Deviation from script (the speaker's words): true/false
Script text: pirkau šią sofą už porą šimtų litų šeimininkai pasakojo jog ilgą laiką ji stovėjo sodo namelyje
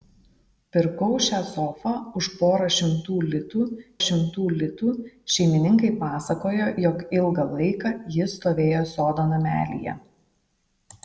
true